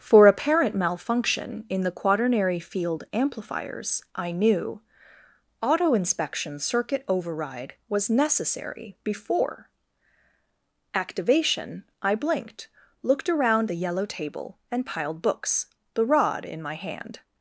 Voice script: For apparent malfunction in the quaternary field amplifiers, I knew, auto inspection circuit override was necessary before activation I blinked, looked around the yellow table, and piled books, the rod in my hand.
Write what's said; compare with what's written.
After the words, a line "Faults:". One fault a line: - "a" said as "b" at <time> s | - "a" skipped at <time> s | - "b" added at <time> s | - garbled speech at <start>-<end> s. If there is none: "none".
For apparent malfunction in the quaternary field amplifiers, I knew, auto inspection circuit override was necessary before activation I blinked, looked around the yellow table, and piled books, the rod in my hand.
Faults:
none